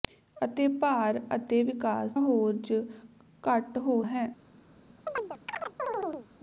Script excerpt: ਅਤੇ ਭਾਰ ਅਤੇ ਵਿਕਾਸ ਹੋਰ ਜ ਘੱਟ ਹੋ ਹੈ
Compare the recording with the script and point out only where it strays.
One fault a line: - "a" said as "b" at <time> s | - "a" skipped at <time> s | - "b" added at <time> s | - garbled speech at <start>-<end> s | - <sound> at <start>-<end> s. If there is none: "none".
- chirp at 5.1-6.3 s